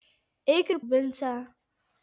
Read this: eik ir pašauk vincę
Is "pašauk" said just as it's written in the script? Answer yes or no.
no